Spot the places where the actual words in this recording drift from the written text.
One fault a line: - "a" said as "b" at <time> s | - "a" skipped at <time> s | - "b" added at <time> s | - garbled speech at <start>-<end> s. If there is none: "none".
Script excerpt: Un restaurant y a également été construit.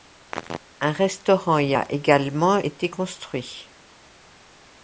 none